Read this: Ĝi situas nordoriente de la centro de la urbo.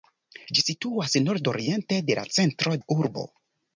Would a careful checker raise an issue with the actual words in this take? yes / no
yes